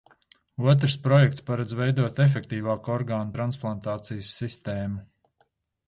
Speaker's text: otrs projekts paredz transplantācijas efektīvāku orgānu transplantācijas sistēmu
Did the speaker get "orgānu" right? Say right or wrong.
right